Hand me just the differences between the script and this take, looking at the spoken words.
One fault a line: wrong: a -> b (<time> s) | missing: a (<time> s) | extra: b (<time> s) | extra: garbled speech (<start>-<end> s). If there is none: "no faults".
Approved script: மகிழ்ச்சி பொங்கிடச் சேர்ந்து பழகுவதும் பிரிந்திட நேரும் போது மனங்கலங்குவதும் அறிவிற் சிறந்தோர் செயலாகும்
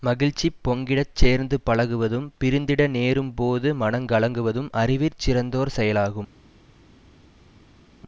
no faults